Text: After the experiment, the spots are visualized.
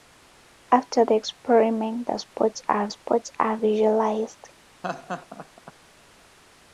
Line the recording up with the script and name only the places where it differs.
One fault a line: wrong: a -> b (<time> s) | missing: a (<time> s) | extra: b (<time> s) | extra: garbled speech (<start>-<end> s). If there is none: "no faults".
extra: spots are (2.9 s)